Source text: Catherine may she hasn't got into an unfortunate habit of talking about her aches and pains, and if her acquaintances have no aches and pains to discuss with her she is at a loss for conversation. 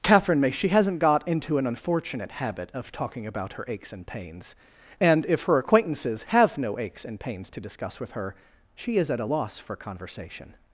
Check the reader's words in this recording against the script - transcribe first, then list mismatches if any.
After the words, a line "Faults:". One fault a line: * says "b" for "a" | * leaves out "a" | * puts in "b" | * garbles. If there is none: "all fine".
Catherine may she hasn't got into an unfortunate habit of talking about her aches and pains, and if her acquaintances have no aches and pains to discuss with her she is at a loss for conversation.
Faults:
all fine